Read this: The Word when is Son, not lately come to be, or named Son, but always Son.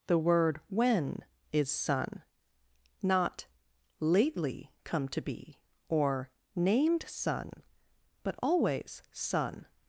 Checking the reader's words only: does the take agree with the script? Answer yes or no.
yes